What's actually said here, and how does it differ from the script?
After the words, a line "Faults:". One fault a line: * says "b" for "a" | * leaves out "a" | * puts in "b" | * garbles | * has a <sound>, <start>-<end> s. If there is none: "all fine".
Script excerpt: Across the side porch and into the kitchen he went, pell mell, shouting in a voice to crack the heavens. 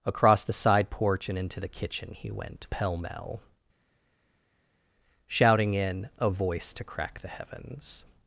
Across the side porch and into the kitchen he went, pell mell, shouting in a voice to crack the heavens.
Faults:
all fine